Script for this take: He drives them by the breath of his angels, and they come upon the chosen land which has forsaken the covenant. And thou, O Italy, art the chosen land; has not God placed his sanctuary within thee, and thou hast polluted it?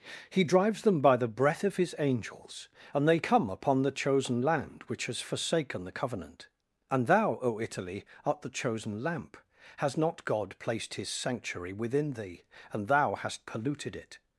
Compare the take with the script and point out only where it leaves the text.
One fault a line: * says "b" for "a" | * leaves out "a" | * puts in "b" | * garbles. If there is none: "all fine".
* says "lamp" for "land"